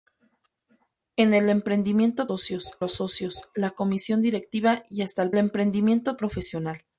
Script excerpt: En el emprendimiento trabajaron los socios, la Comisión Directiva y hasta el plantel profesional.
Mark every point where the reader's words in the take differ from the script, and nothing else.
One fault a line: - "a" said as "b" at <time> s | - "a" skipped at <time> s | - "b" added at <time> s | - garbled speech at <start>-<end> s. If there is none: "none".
- "trabajaron" said as "socios" at 2.2 s
- "plantel" said as "emprendimiento" at 5.4 s